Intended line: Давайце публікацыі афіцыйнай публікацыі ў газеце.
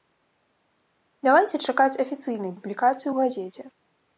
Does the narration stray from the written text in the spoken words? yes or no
yes